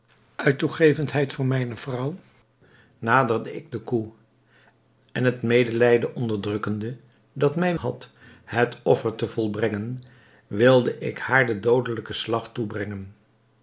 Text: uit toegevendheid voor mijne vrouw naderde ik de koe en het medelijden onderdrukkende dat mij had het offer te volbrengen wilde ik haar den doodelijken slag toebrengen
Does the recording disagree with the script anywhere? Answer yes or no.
no